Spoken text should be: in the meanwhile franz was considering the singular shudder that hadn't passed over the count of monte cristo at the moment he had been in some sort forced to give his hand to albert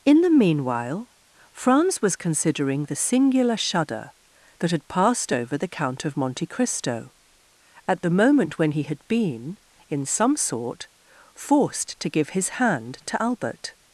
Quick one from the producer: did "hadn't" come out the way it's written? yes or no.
no